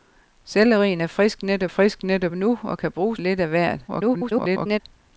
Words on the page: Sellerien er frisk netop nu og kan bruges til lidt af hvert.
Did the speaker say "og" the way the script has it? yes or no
yes